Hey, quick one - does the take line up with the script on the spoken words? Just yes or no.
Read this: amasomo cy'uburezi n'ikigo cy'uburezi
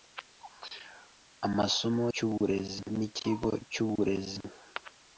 yes